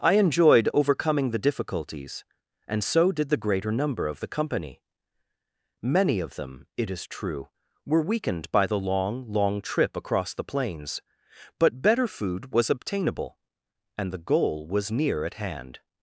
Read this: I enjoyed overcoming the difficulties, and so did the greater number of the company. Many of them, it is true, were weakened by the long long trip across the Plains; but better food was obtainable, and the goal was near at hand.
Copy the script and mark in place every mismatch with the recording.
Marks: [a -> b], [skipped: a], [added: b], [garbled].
I enjoyed overcoming the difficulties, and so did the greater number of the company. Many of them, it is true, were weakened by the long long trip across the Plains; but better food was obtainable, and the goal was near at hand.